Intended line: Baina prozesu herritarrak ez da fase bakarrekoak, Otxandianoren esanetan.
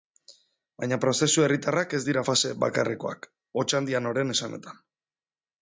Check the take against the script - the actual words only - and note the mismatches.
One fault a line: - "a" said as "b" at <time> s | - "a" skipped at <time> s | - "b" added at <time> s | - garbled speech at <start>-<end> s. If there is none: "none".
- "da" said as "dira" at 2.1 s